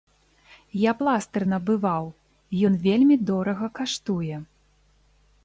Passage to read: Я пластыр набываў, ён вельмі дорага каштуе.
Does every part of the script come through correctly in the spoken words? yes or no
yes